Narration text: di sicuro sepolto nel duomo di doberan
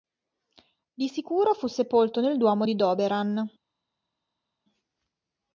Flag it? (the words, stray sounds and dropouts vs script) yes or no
yes